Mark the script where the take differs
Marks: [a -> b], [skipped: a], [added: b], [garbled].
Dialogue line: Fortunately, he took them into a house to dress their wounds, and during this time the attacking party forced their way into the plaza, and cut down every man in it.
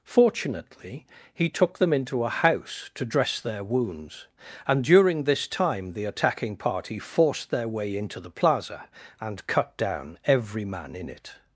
Fortunately, he took them into a house to dress their wounds, and during this time the attacking party forced their way into the plaza, and cut down every man in it.